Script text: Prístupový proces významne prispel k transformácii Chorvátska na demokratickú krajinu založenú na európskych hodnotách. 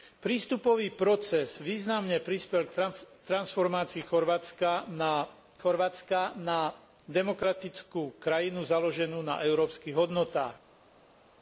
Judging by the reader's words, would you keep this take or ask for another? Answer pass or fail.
fail